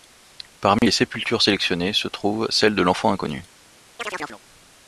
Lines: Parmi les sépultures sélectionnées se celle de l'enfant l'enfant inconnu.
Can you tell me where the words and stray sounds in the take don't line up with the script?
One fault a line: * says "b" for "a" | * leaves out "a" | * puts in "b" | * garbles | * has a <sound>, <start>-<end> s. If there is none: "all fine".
* has a dropout, 0.8-0.8 s
* puts in "trouve"
* leaves out "l'enfant"
* has a chirp, 4.0-4.4 s